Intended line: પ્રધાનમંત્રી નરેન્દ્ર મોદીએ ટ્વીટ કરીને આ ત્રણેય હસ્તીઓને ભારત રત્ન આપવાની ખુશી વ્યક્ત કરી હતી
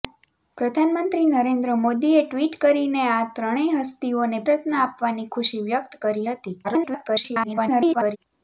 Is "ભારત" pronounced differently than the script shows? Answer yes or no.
yes